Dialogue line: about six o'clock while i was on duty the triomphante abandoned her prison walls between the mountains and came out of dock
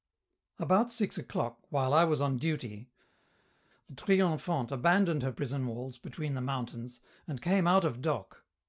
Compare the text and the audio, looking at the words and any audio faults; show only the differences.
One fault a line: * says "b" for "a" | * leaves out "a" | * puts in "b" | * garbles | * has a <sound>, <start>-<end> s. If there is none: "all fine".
all fine